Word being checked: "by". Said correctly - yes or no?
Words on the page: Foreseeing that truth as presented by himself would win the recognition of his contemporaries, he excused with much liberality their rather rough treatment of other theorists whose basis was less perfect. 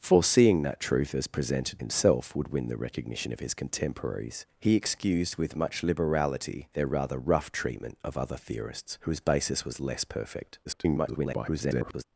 no